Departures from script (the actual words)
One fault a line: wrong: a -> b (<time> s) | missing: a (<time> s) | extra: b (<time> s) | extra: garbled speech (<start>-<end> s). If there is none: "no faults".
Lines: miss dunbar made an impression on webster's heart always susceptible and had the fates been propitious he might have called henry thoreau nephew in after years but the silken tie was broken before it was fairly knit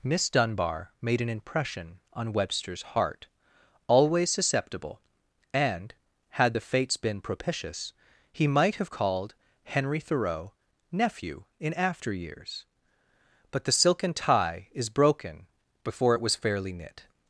wrong: was -> is (14.7 s)